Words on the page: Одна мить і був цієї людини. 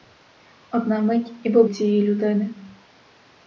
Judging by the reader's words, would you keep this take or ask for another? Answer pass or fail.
pass